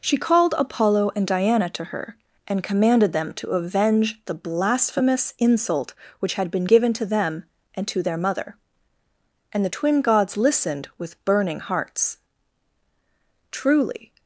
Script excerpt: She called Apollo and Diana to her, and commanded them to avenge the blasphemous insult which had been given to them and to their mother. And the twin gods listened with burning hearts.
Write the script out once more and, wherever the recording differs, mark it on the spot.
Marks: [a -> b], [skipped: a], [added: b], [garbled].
She called Apollo and Diana to her, and commanded them to avenge the blasphemous insult which had been given to them and to their mother. And the twin gods listened with burning hearts. [added: Truly]